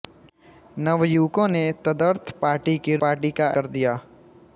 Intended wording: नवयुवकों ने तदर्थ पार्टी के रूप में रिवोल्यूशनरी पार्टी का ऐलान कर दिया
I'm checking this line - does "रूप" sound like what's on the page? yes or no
no